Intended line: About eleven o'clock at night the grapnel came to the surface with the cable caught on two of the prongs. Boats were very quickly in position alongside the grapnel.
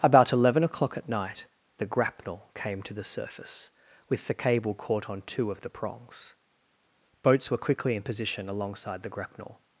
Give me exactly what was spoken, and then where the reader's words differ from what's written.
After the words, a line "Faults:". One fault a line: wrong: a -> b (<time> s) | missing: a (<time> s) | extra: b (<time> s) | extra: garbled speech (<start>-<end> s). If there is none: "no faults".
About eleven o'clock at night the grapnel came to the surface with the cable caught on two of the prongs. Boats were quickly in position alongside the grapnel.
Faults:
missing: very (7.6 s)